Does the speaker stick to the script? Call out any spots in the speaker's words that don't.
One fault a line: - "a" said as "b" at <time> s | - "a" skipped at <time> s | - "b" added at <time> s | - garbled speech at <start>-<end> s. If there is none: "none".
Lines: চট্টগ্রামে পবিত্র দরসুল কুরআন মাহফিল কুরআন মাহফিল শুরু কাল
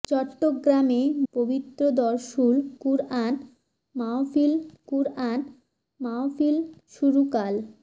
none